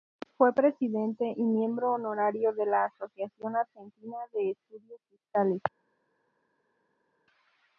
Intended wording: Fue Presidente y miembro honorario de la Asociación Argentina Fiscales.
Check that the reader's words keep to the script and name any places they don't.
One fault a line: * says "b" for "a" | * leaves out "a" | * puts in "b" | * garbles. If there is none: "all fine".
* puts in "de Estudios"